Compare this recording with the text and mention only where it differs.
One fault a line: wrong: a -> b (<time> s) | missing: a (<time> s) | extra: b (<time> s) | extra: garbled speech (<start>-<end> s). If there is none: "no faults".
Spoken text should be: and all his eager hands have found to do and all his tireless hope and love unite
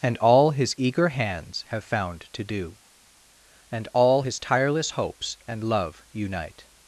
wrong: hope -> hopes (4.9 s)